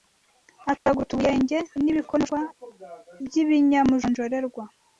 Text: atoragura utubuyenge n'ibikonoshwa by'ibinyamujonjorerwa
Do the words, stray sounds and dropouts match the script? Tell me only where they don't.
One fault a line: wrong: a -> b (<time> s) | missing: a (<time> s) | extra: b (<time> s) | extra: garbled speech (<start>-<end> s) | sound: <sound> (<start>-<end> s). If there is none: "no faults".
sound: dropout (0.8-0.9 s)